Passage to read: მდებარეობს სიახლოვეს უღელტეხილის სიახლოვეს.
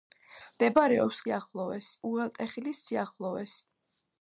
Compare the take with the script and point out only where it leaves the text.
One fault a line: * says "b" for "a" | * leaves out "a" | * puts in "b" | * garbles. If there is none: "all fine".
all fine